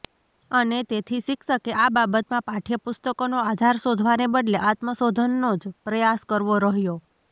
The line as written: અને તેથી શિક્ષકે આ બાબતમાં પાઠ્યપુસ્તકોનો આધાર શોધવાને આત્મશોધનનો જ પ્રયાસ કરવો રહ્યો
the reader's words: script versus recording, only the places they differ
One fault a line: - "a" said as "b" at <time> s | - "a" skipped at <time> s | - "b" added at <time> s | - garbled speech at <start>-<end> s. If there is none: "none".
- "બદલે" added at 4.3 s